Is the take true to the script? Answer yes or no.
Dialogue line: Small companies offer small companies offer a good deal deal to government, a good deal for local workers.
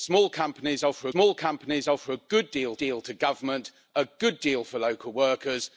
yes